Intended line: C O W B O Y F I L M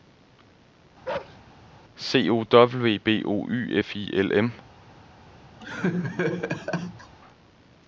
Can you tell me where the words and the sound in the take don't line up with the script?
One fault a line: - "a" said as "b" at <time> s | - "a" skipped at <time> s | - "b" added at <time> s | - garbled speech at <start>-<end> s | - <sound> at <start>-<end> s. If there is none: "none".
- bark at 1.0-1.4 s
- laugh at 5.6-7.1 s